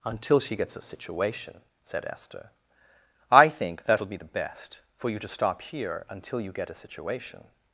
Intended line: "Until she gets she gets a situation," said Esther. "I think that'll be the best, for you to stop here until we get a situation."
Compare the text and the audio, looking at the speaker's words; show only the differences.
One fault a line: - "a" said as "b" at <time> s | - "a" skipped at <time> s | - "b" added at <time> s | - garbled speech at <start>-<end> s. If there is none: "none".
- "she gets" skipped at 0.8 s
- "we" said as "you" at 6.4 s